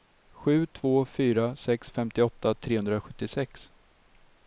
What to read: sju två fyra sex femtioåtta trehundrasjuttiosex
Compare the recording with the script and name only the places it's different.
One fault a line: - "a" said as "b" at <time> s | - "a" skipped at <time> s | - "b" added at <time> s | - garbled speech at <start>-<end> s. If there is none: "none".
none